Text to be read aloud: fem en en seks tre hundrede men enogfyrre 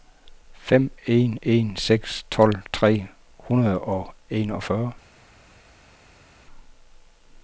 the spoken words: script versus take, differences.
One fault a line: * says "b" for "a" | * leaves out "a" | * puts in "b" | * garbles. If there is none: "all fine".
* puts in "tolv"
* says "og" for "men"